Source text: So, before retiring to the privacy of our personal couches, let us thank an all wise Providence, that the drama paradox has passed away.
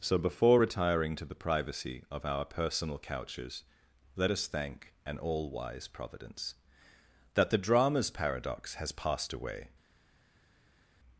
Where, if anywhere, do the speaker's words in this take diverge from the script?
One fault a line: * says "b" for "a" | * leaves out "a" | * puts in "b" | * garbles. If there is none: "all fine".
* says "dramas" for "drama"